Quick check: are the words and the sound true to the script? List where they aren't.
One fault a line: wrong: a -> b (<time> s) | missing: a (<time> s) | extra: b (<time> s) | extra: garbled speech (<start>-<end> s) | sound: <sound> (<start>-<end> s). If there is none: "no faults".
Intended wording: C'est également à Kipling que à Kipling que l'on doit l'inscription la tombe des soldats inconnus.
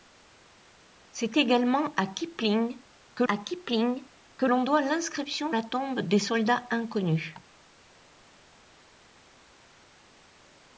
no faults